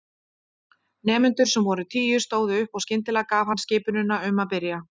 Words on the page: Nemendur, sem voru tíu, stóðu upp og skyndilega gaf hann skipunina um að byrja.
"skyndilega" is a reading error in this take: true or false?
false